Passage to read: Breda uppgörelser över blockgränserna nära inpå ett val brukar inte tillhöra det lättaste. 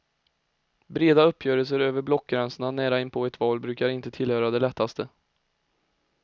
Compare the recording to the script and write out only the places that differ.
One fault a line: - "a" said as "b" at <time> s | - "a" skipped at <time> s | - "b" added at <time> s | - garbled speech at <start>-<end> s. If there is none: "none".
none